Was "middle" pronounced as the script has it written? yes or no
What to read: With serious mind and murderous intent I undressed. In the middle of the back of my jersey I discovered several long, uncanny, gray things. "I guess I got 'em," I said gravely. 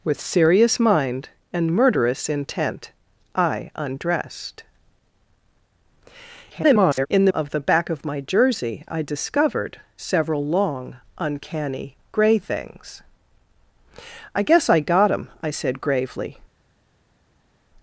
no